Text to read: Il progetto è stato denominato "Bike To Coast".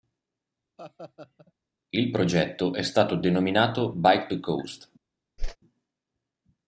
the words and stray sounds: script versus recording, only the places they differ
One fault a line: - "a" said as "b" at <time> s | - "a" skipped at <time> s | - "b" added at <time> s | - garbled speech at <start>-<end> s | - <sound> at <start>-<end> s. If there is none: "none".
- laugh at 0.8-1.5 s
- whoosh at 5.4-5.6 s